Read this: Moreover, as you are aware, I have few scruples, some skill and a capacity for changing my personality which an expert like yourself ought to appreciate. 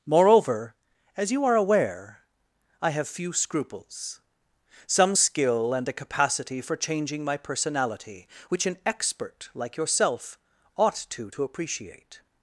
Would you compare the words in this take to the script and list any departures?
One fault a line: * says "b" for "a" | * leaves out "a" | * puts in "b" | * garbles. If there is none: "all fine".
* puts in "to"